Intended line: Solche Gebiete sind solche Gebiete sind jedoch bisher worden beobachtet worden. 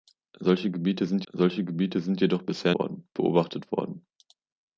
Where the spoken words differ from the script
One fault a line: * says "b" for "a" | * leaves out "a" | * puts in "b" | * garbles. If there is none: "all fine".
all fine